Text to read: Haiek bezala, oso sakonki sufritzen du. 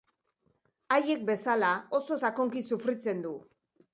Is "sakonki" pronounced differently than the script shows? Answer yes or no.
no